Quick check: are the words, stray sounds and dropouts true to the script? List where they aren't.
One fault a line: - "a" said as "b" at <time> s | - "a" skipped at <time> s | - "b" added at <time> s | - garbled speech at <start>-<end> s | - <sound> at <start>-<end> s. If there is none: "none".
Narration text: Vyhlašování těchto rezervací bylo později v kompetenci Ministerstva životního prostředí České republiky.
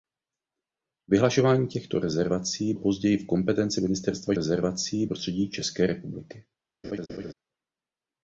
- "bylo" skipped at 2.7 s
- "životního" said as "rezervací" at 4.3 s
- laugh at 6.8-7.3 s